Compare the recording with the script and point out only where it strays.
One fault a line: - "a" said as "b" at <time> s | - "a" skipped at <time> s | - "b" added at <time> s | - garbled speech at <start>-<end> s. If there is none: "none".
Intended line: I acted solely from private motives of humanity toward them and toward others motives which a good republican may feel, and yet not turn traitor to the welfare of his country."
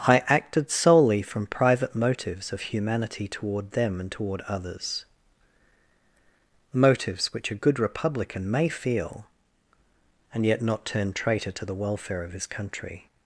none